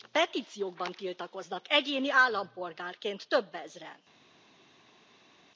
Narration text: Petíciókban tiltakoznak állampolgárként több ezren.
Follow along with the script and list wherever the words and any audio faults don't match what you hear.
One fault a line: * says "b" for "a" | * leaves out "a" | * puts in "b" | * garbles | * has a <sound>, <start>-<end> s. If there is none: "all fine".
* puts in "egyéni"